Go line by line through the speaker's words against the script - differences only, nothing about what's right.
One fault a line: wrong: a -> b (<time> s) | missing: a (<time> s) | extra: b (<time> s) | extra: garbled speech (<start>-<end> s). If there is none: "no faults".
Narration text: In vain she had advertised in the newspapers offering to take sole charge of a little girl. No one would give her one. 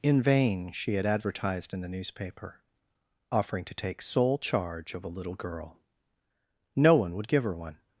wrong: newspapers -> newspaper (1.9 s)